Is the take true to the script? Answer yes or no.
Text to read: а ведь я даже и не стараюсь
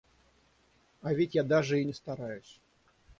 yes